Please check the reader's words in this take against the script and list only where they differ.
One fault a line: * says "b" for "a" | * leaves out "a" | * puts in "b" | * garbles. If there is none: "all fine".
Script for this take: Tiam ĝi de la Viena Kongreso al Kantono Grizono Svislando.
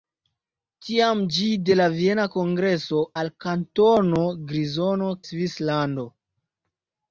all fine